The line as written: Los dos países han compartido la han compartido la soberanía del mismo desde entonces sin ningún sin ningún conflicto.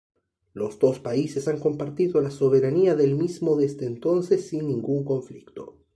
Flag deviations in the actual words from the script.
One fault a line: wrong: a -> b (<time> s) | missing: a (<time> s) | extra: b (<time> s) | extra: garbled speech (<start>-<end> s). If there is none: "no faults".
missing: han compartido la (2.3 s)
missing: sin ningún (5.0 s)